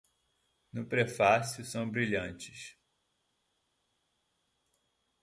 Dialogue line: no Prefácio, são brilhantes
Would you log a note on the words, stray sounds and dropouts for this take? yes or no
no